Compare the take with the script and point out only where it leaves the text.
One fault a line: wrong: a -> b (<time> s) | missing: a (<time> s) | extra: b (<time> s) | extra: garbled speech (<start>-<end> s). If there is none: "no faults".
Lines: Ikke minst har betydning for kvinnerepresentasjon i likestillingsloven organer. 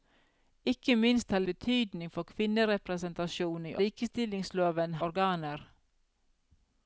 no faults